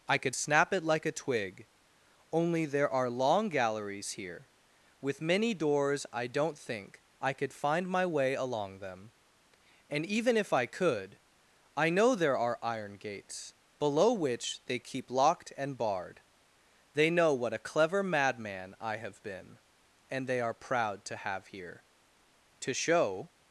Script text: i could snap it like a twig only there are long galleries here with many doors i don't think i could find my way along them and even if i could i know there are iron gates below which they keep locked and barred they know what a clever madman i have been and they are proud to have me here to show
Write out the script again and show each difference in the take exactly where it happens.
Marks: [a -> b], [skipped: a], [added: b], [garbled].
i could snap it like a twig only there are long galleries here with many doors i don't think i could find my way along them and even if i could i know there are iron gates below which they keep locked and barred they know what a clever madman i have been and they are proud to have [skipped: me] here to show